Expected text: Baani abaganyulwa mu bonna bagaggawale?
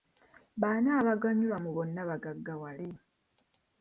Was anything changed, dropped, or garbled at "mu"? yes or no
no